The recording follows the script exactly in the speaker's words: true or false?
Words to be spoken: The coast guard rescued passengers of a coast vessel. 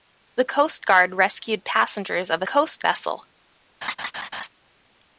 true